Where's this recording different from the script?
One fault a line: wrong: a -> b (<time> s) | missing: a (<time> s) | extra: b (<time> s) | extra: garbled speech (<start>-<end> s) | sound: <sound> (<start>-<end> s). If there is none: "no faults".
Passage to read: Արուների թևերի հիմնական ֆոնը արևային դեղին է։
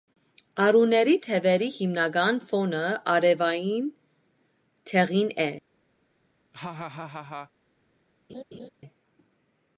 sound: laugh (6.5-7.5 s)
sound: laugh (8.3-8.7 s)